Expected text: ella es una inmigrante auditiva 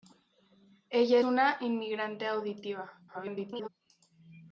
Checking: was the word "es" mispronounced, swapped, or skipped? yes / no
yes